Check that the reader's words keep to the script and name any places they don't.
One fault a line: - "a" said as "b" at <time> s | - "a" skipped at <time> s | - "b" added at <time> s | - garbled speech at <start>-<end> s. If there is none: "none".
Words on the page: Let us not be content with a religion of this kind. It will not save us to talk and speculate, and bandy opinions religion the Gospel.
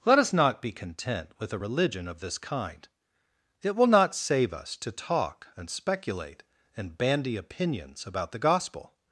- "religion" said as "about" at 8.1 s